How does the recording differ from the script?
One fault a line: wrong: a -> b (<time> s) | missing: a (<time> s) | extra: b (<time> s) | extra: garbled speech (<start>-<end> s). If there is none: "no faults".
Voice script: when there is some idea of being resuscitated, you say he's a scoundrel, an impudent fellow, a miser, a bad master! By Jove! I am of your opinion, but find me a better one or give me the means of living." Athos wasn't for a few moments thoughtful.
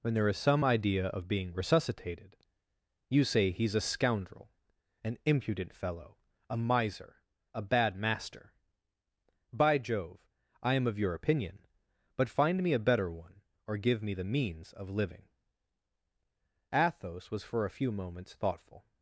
wrong: wasn't -> was (17.3 s)